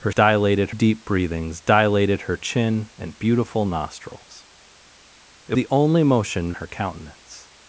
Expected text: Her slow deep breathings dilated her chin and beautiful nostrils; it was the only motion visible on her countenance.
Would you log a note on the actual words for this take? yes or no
yes